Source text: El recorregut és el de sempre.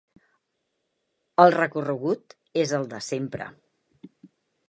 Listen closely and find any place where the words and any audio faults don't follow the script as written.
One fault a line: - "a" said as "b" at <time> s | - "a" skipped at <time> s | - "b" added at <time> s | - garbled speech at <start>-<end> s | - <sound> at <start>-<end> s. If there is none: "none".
none